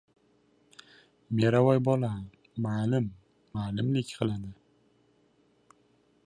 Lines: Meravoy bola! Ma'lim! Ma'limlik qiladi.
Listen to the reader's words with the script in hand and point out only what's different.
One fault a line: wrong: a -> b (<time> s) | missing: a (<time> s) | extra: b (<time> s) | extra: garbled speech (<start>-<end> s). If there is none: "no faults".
no faults